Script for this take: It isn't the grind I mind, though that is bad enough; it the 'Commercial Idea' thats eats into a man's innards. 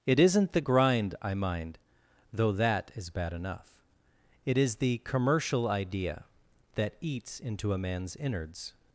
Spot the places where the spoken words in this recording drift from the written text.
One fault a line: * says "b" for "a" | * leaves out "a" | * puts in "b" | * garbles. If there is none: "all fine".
* puts in "is"
* says "that" for "thats"